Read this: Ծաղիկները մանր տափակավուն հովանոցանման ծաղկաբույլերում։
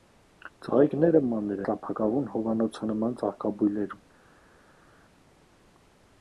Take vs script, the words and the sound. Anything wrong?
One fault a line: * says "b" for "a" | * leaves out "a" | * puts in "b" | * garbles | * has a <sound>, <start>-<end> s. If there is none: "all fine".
all fine